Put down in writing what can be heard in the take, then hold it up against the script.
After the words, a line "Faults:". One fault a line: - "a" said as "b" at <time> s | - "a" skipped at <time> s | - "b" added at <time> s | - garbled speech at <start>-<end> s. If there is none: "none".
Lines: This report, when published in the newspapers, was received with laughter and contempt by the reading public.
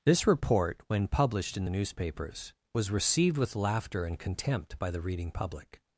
This report, when published in the newspapers, was received with laughter and contempt by the reading public.
Faults:
none